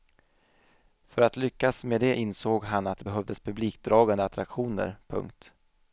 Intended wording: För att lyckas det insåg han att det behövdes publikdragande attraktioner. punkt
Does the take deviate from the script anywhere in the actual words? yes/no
yes